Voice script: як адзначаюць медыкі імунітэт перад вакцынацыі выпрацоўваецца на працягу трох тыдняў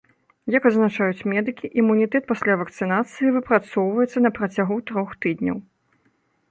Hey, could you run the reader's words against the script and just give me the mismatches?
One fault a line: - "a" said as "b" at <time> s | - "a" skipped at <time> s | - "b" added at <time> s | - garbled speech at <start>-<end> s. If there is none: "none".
- "перад" said as "пасля" at 2.3 s